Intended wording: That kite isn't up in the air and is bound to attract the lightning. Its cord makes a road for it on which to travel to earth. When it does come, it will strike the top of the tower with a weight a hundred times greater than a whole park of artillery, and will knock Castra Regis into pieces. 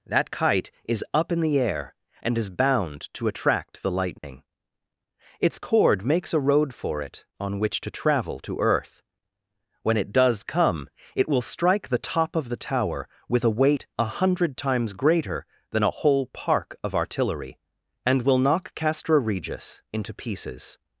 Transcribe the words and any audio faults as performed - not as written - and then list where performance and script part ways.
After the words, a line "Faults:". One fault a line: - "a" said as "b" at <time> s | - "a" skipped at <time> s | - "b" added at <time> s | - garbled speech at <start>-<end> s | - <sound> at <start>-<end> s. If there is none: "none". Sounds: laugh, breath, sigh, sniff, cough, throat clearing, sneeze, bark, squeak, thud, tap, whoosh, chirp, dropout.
That kite is up in the air and is bound to attract the lightning. Its cord makes a road for it on which to travel to earth. When it does come, it will strike the top of the tower with a weight a hundred times greater than a whole park of artillery, and will knock Castra Regis into pieces.
Faults:
- "isn't" said as "is" at 0.8 s
- dropout at 4.2-4.2 s